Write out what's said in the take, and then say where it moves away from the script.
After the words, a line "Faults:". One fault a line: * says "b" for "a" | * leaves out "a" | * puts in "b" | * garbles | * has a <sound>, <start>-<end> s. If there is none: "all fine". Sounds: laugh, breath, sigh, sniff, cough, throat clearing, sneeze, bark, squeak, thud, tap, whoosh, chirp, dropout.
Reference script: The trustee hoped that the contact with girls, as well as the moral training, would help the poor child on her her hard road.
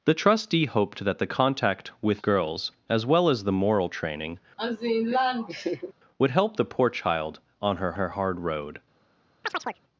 The trustee hoped that the contact with girls, as well as the moral training, would help the poor child on her her hard road.
Faults:
* has a laugh, 4.6-5.9 s
* has a chirp, 9.4-9.8 s